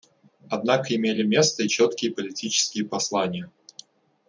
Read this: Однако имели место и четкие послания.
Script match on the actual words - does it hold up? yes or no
no